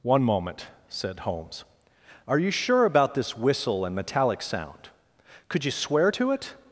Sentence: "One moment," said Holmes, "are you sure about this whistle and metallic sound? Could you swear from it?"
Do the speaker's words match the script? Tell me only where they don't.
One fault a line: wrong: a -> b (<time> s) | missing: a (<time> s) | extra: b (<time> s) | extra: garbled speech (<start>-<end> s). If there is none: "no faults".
wrong: from -> to (6.1 s)